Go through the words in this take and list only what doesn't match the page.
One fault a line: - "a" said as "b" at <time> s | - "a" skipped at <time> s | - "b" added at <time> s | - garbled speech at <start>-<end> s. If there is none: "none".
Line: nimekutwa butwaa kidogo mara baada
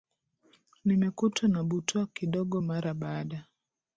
- "na" added at 1.5 s